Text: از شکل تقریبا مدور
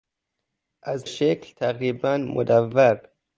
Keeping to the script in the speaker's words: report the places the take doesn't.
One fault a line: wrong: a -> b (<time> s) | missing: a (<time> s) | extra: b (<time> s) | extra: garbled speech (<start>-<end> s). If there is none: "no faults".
no faults